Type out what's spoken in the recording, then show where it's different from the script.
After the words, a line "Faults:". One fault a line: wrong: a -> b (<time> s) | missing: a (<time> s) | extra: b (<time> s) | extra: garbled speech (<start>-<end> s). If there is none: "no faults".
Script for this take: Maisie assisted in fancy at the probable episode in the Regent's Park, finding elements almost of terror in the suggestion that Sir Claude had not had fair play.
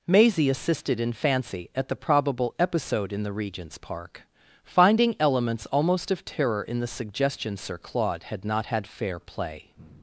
Maisie assisted in fancy at the probable episode in the Regent's Park, finding elements almost of terror in the suggestion Sir Claude had not had fair play.
Faults:
missing: that (7.6 s)